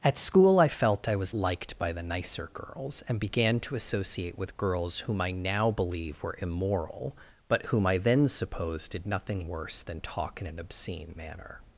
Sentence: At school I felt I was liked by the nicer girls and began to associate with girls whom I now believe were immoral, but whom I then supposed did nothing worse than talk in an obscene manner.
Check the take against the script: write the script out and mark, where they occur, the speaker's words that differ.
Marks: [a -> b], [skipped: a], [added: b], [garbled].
At school I felt I was liked by the nicer girls and began to associate with girls whom I now believe were immoral, but whom I then supposed did nothing worse than talk in an obscene manner.